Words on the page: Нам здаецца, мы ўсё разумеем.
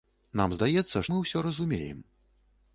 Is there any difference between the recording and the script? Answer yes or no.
no